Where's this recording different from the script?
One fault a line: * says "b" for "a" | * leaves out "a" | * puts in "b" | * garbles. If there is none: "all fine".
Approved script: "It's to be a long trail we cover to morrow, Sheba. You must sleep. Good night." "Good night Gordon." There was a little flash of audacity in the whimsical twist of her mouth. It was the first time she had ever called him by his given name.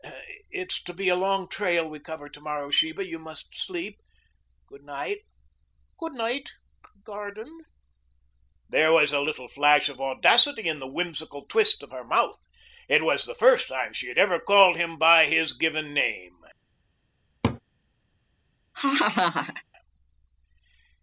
all fine